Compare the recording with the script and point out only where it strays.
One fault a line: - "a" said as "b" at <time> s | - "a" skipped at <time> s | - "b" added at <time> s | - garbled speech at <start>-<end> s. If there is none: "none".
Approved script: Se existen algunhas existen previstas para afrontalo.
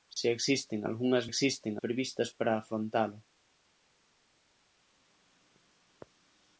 none